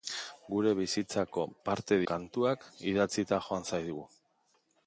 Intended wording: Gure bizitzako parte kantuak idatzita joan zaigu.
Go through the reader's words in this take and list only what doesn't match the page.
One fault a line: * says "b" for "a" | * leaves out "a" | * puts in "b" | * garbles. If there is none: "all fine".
all fine